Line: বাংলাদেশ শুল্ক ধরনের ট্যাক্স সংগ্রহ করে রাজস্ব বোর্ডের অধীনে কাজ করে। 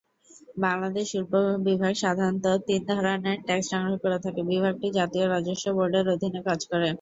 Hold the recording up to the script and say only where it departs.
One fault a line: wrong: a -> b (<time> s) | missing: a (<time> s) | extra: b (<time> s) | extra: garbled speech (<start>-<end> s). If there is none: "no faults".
extra: বিভাগ সাধারণত তিন (1.7 s)
extra: থাকে বিভাগটি জাতীয় (4.2 s)